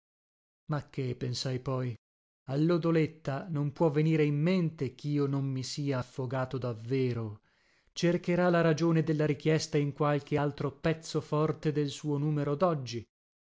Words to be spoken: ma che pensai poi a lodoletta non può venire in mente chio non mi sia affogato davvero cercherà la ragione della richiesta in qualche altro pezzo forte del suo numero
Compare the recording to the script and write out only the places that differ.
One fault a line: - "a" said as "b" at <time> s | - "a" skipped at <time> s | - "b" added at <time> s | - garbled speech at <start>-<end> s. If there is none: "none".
none